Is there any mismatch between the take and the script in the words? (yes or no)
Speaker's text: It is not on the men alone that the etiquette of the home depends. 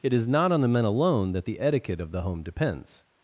no